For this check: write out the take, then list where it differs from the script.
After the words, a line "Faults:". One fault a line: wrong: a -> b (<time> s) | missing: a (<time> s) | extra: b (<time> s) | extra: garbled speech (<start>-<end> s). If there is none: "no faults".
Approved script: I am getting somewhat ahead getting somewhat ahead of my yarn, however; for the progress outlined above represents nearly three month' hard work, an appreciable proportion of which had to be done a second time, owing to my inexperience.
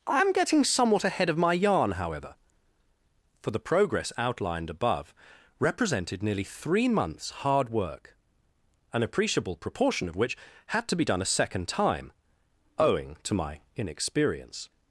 I am getting somewhat ahead of my yarn, however; for the progress outlined above represented nearly three months' hard work, an appreciable proportion of which had to be done a second time, owing to my inexperience.
Faults:
missing: getting somewhat ahead (1.3 s)
wrong: represents -> represented (5.6 s)
wrong: month -> months (6.9 s)